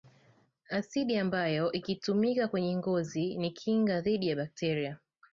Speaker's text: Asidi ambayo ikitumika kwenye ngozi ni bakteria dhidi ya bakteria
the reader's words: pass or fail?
fail